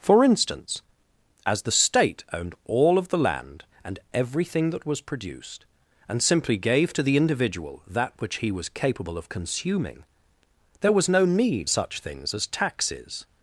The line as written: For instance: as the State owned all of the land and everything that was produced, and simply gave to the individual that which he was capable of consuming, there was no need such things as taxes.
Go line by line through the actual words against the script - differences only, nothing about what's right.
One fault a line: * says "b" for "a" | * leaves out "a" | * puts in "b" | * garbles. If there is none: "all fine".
all fine